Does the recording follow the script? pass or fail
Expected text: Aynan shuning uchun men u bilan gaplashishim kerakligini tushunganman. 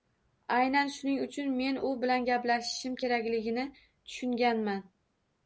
pass